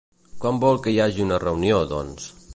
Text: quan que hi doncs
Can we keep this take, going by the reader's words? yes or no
no